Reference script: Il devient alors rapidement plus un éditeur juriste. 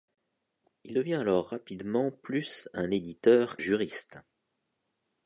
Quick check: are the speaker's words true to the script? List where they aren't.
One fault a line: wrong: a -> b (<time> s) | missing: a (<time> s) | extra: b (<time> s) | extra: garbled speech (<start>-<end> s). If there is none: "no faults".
no faults